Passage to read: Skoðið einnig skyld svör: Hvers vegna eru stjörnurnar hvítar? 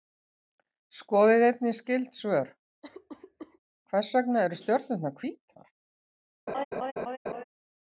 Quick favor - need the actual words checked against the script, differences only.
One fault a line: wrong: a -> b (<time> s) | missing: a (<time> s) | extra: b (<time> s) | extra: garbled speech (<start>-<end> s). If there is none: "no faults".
no faults